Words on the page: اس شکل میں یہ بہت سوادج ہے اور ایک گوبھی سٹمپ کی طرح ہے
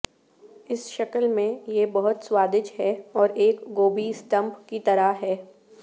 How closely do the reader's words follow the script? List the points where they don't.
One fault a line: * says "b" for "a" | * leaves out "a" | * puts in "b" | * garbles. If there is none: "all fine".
all fine